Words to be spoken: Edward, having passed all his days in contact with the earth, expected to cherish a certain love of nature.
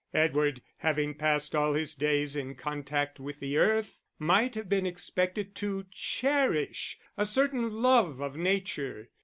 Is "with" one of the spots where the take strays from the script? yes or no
no